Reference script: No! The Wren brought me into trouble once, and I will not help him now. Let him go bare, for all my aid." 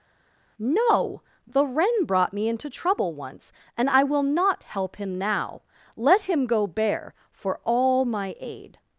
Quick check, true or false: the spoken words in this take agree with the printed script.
true